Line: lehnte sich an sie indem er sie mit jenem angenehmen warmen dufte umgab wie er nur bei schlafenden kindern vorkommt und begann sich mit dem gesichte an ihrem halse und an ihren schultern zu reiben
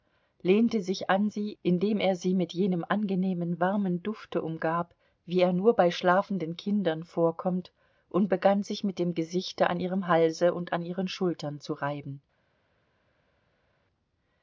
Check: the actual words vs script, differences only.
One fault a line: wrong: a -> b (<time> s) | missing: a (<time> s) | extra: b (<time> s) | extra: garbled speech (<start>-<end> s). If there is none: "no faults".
no faults